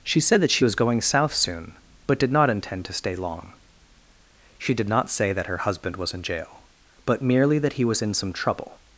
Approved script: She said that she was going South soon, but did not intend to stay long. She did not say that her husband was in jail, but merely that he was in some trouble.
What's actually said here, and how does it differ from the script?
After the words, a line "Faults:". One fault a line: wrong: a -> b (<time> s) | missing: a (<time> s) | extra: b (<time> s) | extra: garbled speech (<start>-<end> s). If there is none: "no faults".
She said that she was going South soon, but did not intend to stay long. She did not say that her husband was in jail, but merely that he was in some trouble.
Faults:
no faults